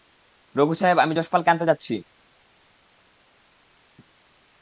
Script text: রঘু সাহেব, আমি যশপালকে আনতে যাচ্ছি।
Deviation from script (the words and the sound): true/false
false